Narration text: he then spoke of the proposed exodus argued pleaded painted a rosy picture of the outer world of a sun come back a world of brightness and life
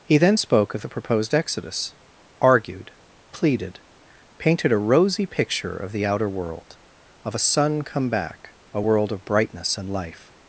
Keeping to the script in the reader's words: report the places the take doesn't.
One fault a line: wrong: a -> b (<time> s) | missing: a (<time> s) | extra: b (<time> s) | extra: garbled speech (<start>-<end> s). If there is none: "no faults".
no faults